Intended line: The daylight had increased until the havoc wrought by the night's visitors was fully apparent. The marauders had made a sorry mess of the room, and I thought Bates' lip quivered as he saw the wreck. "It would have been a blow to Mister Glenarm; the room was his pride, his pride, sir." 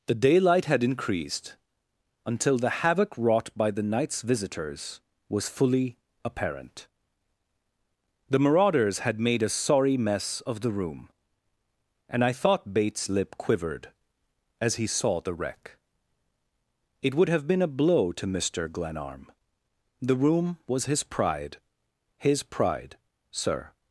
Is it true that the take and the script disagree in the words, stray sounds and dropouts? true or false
false